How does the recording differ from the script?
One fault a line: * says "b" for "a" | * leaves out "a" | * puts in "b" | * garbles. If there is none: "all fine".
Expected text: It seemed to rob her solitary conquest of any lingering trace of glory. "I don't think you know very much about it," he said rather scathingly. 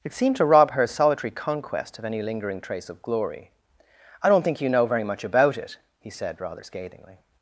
all fine